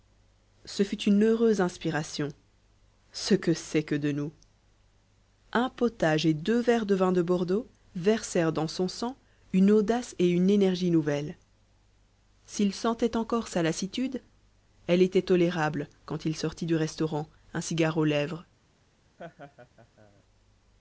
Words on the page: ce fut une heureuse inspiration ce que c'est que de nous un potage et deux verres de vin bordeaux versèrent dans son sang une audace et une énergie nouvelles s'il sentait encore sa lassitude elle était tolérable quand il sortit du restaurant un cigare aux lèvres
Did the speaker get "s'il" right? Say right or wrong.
right